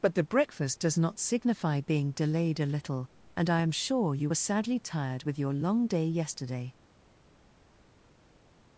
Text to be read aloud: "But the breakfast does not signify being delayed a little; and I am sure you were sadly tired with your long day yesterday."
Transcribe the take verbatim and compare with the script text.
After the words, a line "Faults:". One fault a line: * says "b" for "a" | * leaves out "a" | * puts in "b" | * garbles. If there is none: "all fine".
"But the breakfast does not signify being delayed a little; and I am sure you were sadly tired with your long day yesterday."
Faults:
all fine